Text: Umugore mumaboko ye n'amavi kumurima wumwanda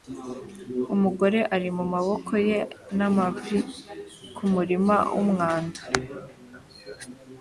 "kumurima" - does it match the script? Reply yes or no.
yes